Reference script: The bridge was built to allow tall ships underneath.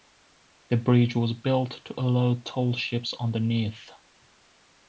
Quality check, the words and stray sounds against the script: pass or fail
pass